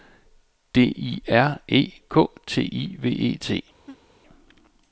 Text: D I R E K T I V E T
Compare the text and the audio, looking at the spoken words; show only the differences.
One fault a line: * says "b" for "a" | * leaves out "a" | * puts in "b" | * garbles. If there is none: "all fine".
all fine